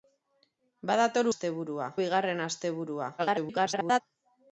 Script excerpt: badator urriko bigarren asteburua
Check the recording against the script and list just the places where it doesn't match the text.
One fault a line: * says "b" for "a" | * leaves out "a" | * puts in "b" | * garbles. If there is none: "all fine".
* says "asteburua" for "urriko"
* garbles